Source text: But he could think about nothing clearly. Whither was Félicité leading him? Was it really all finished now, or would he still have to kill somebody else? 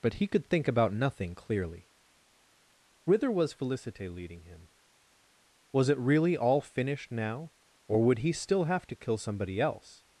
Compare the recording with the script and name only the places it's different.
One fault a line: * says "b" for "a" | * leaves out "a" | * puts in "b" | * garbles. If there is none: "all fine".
all fine